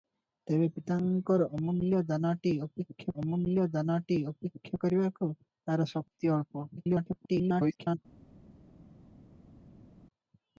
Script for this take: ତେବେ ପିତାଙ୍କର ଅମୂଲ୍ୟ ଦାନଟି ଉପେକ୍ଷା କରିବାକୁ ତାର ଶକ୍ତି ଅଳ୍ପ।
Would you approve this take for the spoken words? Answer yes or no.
no